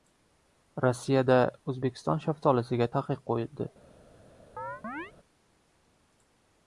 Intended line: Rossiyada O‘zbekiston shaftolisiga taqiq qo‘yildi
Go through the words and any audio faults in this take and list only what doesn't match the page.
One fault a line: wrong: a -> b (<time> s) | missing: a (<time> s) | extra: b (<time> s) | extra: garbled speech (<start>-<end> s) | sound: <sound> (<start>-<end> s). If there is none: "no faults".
sound: chirp (4.6-5.1 s)